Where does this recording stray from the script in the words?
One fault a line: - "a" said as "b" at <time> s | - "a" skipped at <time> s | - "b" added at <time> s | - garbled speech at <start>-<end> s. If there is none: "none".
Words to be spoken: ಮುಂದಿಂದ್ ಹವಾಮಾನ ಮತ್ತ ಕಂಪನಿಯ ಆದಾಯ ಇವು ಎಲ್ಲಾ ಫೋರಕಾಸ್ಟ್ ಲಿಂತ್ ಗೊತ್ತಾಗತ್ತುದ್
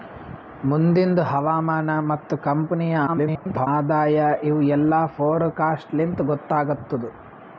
- garbled speech at 3.1-3.7 s